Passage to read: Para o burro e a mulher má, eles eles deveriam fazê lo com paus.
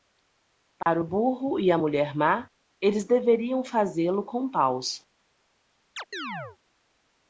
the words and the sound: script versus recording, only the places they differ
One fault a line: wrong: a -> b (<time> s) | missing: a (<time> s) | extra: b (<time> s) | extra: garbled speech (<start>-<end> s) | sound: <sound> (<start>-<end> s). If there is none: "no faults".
sound: dropout (0.8-0.9 s)
missing: eles (3.0 s)
sound: chirp (6.0-6.6 s)